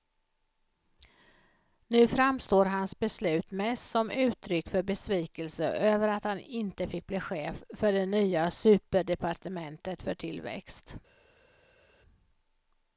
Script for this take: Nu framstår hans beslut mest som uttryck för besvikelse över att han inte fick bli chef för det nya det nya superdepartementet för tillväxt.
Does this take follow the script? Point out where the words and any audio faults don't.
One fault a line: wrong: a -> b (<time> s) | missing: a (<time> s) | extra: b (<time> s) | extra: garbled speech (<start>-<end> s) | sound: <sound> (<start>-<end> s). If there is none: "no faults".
missing: det nya (8.5 s)